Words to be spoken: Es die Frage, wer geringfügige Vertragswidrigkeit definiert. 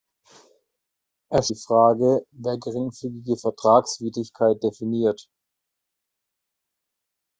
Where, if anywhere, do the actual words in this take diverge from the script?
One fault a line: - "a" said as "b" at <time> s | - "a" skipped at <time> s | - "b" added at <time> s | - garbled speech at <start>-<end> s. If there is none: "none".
none